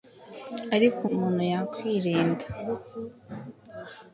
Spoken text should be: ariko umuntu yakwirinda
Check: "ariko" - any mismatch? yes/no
no